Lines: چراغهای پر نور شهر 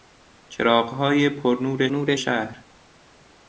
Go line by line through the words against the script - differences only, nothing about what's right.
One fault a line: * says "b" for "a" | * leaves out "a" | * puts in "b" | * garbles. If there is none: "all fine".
* puts in "نور"